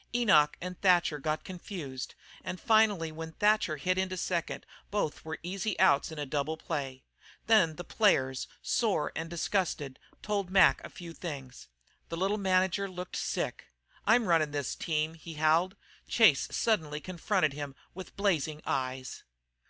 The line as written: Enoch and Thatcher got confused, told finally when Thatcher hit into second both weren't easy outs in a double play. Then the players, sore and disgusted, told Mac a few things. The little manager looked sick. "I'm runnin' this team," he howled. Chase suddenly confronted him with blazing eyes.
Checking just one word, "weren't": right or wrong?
wrong